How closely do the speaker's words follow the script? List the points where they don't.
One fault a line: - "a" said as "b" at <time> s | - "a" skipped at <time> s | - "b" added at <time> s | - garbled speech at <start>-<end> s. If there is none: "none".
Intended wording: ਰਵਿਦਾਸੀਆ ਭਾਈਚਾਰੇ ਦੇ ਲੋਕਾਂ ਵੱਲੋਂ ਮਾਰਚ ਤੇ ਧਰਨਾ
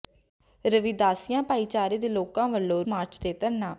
none